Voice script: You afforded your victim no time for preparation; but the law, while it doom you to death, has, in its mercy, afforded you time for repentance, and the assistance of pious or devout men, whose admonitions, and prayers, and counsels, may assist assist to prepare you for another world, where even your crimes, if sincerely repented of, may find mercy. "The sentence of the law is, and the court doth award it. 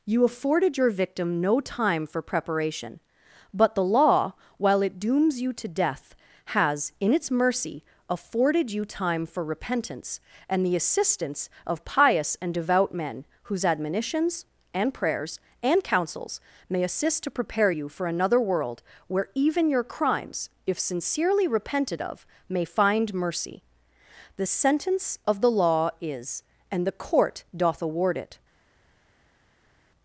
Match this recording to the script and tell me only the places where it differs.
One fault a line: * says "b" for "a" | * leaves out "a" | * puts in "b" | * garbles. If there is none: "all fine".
* says "dooms" for "doom"
* says "and" for "or"
* leaves out "assist"